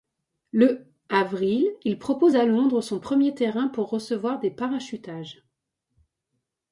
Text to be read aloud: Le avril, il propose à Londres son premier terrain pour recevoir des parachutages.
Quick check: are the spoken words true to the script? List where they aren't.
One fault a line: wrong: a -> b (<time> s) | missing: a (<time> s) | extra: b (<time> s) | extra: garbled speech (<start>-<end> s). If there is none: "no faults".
no faults